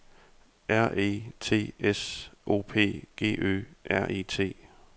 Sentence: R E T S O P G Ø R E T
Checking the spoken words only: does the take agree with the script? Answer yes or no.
yes